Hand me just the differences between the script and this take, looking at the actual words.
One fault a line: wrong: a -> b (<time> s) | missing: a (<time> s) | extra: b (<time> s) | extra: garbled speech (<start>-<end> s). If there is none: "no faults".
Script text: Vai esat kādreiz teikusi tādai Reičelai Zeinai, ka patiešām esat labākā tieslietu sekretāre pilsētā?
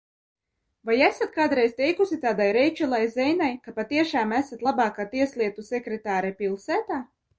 no faults